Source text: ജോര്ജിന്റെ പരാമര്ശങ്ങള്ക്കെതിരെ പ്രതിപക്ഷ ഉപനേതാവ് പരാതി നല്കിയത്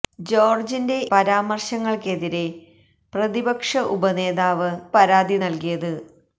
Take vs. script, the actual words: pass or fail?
pass